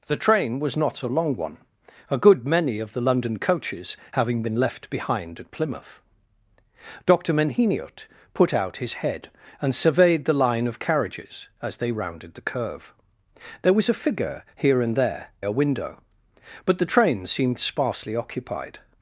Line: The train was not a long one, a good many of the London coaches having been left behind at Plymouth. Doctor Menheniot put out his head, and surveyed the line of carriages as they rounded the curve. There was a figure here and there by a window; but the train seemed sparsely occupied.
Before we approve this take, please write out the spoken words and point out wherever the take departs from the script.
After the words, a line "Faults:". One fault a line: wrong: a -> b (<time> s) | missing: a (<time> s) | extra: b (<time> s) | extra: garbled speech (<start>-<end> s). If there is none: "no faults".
The train was not a long one, a good many of the London coaches having been left behind at Plymouth. Doctor Menheniot put out his head, and surveyed the line of carriages as they rounded the curve. There was a figure here and there a window; but the train seemed sparsely occupied.
Faults:
missing: by (15.3 s)